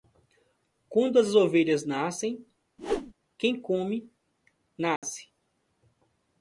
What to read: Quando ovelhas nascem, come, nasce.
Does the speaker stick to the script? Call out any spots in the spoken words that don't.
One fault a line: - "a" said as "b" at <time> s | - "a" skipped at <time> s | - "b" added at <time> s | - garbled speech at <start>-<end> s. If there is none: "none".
- "as" added at 1.2 s
- "quem" added at 3.4 s